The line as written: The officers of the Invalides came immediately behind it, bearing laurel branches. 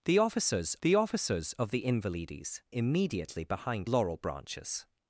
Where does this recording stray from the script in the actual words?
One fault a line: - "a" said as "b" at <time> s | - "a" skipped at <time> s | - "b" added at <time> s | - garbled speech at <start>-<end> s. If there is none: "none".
- "the officers" added at 0.8 s
- "came" skipped at 2.6 s
- "it bearing" skipped at 3.9 s